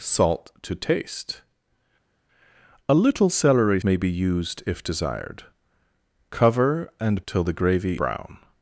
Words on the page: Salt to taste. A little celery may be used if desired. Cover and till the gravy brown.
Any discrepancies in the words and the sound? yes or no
no